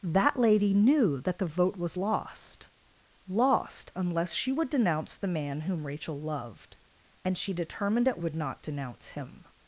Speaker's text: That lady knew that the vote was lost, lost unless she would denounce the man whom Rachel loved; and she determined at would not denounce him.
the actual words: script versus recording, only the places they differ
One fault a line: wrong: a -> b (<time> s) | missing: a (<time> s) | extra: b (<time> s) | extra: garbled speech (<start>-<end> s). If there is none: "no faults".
no faults